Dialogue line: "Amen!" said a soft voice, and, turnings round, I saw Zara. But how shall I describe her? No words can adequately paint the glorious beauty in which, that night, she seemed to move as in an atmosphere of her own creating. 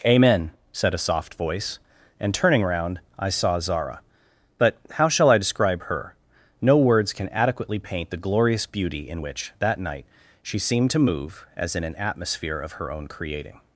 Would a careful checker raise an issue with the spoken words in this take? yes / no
yes